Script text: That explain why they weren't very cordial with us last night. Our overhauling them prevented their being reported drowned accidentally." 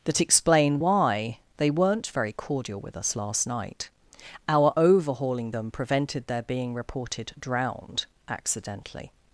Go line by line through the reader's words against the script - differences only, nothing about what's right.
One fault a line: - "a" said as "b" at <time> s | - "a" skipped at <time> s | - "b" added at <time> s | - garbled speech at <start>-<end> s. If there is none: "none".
none